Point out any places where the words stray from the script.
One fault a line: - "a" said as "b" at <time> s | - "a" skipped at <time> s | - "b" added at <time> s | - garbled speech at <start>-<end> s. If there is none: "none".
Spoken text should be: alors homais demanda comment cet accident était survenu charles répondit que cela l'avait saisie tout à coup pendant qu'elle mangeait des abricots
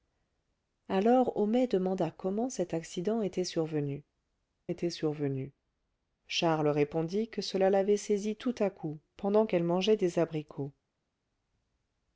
- "était survenu" added at 4.7 s